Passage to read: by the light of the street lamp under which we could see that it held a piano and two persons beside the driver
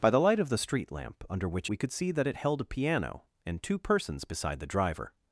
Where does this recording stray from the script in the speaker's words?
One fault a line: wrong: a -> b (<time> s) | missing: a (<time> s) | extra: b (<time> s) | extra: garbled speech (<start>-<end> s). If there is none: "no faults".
no faults